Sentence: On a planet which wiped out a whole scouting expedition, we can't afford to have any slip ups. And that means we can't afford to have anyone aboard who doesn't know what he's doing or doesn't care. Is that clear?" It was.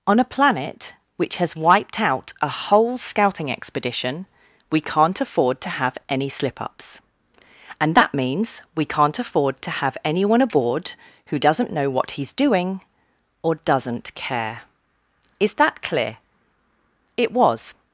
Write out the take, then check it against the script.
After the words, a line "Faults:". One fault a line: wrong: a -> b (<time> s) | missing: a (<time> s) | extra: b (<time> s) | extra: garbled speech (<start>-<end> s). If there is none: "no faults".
On a planet which has wiped out a whole scouting expedition, we can't afford to have any slip ups. And that means we can't afford to have anyone aboard who doesn't know what he's doing or doesn't care. Is that clear?" It was.
Faults:
extra: has (1.4 s)